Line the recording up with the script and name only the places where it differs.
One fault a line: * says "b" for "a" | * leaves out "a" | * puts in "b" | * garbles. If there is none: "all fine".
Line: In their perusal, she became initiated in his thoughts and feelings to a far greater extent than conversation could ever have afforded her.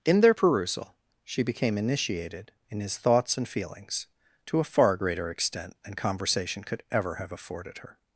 all fine